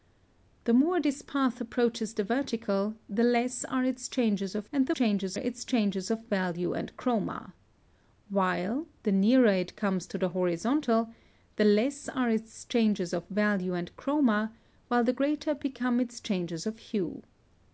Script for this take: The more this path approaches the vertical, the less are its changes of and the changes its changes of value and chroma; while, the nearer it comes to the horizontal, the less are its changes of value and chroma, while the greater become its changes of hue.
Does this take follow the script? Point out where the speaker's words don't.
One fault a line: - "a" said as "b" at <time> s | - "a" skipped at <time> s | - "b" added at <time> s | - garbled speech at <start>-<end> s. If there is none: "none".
none